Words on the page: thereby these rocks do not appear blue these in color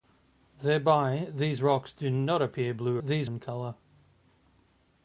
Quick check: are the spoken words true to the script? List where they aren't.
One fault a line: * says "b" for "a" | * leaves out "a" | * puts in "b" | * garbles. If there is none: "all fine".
all fine